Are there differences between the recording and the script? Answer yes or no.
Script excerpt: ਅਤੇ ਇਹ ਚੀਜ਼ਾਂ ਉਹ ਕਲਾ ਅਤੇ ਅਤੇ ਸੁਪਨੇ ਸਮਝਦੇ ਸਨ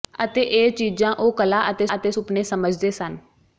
no